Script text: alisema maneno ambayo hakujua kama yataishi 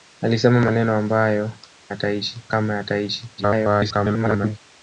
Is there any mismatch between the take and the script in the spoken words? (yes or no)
yes